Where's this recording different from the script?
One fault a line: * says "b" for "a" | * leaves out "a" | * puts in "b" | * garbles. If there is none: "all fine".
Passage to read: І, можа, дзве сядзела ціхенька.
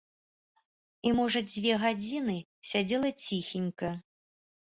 * puts in "гадзіны"